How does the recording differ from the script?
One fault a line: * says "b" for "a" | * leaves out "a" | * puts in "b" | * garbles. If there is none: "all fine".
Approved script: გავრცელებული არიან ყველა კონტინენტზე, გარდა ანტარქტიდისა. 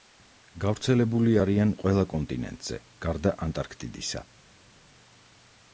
all fine